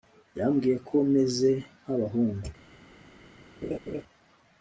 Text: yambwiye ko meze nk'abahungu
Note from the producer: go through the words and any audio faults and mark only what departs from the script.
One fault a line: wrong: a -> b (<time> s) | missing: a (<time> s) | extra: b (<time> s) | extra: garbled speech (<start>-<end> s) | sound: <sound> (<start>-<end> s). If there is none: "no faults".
sound: laugh (3.6-4.0 s)